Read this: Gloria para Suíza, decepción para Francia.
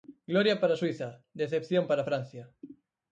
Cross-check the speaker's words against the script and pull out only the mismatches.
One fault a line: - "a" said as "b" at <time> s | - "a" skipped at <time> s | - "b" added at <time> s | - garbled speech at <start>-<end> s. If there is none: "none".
none